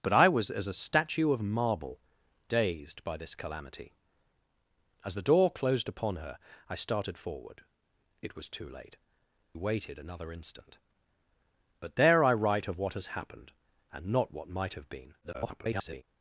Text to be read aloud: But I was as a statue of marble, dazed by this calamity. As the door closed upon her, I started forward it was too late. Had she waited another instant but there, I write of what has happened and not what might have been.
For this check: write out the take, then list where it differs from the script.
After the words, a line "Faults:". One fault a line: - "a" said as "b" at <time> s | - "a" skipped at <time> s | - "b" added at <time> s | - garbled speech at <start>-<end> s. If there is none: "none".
But I was as a statue of marble, dazed by this calamity. As the door closed upon her, I started forward it was too late. Waited another instant but there, I write of what has happened and not what might have been. [garbled]
Faults:
- "Had she" skipped at 9.0 s
- garbled speech at 15.2-16.0 s